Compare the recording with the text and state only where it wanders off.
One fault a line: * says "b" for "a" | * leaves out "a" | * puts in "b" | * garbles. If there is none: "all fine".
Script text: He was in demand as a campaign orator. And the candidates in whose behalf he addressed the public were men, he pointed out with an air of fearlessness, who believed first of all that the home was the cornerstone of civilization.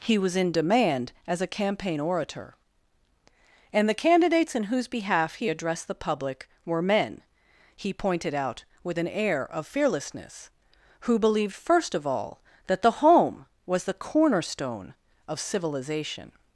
all fine